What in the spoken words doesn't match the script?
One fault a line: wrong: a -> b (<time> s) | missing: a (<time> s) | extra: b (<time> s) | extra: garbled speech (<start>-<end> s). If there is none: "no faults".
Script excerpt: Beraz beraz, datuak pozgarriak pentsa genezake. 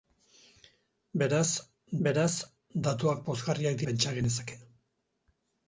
no faults